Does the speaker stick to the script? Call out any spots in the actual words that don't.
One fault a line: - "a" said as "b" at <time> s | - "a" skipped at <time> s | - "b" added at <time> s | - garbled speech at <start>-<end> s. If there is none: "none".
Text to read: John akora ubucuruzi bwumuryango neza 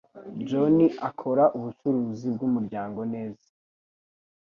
none